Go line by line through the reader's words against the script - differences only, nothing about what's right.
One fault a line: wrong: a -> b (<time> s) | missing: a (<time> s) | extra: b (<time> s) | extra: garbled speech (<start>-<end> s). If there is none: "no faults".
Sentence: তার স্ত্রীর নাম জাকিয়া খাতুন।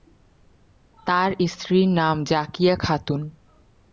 no faults